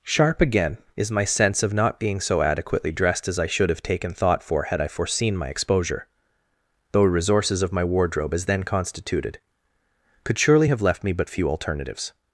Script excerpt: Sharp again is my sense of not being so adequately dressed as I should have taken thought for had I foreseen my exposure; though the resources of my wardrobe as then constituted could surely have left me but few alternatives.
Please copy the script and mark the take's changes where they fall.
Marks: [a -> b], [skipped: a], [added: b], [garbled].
Sharp again is my sense of not being so adequately dressed as I should have taken thought for had I foreseen my exposure; though [skipped: the] resources of my wardrobe as then constituted could surely have left me but few alternatives.